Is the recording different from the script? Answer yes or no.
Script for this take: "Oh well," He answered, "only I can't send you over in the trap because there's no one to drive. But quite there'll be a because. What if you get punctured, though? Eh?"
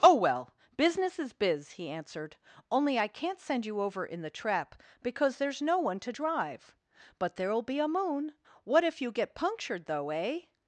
yes